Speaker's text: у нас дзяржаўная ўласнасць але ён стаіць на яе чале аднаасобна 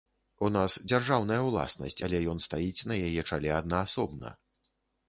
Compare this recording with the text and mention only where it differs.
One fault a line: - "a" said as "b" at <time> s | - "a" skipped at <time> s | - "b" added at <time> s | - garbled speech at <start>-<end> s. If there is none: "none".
none